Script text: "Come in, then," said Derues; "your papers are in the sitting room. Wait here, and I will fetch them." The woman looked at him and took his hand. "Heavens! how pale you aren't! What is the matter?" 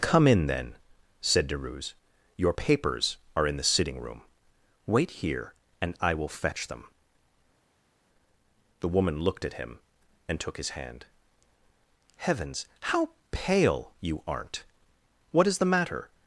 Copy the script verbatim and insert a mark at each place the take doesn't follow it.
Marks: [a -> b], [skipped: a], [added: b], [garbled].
"Come in, then," said Derues; "your papers are in the sitting room. Wait here, and I will fetch them." The woman looked at him and took his hand. "Heavens! how pale you aren't! What is the matter?"